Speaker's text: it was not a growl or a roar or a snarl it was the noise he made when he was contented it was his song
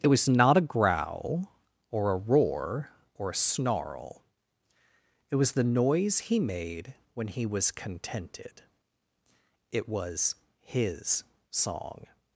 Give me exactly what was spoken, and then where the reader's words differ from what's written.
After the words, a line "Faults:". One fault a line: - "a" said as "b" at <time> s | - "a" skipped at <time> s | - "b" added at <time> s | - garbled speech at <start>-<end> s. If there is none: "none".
it was not a growl or a roar or a snarl it was the noise he made when he was contented it was his song
Faults:
none